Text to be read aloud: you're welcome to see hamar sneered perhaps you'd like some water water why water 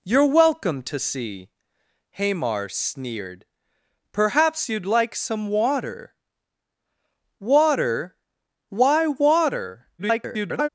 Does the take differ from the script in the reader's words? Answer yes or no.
yes